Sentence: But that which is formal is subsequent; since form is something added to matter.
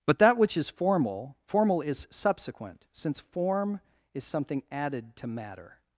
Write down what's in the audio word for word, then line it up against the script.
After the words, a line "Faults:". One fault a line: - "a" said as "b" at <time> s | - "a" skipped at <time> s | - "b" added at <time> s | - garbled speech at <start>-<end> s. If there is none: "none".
But that which is formal formal is subsequent; since form is something added to matter.
Faults:
- "formal" added at 1.4 s